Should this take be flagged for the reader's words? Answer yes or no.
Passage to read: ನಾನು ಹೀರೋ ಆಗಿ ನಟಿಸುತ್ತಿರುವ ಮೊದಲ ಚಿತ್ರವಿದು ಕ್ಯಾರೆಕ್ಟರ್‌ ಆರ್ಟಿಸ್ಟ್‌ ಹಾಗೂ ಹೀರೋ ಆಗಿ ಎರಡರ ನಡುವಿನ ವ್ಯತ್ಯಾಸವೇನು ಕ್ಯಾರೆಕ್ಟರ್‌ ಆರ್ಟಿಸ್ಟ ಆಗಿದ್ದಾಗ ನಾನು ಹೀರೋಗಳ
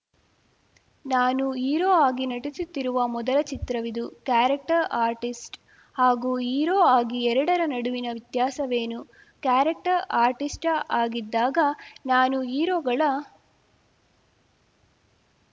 no